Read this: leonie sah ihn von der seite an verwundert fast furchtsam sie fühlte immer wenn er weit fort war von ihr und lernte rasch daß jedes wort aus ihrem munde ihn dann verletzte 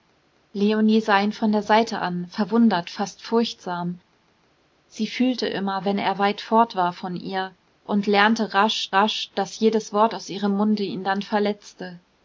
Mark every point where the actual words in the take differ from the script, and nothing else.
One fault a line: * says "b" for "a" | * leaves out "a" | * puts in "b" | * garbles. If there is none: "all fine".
* puts in "rasch"